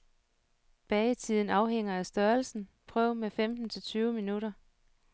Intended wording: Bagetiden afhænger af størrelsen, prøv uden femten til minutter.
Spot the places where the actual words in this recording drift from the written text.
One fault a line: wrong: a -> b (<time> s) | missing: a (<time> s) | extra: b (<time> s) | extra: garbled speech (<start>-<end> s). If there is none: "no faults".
wrong: uden -> med (3.2 s)
extra: tyve (3.8 s)